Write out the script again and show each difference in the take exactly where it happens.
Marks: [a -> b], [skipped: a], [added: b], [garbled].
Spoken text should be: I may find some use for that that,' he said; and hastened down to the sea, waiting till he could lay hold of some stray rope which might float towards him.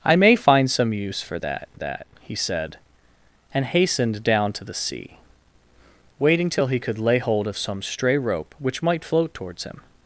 I may find some use for that that,' he said; and hastened down to the sea, waiting till he could lay hold of some stray rope which might float towards him.